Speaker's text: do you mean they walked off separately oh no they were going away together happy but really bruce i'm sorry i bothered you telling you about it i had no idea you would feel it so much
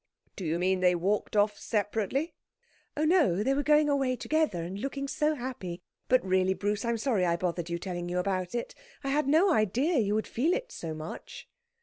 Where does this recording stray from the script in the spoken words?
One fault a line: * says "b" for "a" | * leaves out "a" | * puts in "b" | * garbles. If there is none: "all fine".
* puts in "and looking so"